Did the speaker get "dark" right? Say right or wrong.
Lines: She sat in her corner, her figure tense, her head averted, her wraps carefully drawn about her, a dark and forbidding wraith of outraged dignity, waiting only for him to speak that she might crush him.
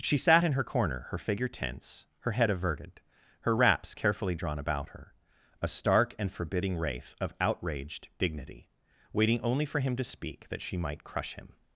wrong